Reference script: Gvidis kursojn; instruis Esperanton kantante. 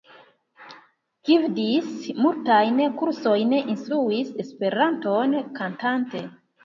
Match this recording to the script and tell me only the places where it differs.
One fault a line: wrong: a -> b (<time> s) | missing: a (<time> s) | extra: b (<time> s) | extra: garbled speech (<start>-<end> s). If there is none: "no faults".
extra: multajn (2.2 s)